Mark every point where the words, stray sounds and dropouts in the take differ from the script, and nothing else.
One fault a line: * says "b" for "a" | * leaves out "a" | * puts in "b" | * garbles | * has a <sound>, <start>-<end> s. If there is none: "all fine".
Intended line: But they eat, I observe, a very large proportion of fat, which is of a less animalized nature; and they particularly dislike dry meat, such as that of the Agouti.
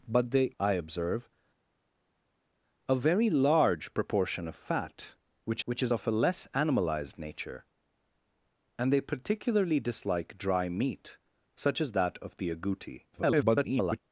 * leaves out "eat"
* puts in "which"
* garbles